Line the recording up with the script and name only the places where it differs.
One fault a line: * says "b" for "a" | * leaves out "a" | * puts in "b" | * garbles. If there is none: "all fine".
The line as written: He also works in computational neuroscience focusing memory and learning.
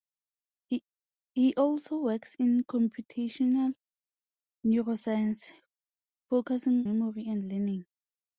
all fine